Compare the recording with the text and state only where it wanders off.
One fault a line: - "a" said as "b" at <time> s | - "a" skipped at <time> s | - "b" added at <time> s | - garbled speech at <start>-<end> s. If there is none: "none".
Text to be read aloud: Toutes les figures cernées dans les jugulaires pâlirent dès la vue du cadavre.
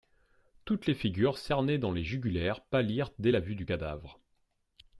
none